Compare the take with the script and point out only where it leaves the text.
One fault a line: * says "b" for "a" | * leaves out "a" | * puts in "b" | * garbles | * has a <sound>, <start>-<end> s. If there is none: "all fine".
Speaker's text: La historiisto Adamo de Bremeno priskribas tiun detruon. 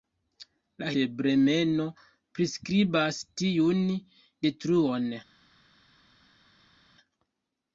* leaves out "historiisto Adamo"